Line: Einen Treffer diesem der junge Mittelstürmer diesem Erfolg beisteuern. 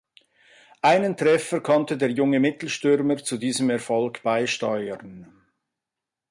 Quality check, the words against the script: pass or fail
fail